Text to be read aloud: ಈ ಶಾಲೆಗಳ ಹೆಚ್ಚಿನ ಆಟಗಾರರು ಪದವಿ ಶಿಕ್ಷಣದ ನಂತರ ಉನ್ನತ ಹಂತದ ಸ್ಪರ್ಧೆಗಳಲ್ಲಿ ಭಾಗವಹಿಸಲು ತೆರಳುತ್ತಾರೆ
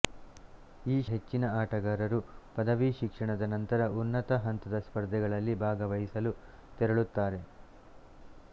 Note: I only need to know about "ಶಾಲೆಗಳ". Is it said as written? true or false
false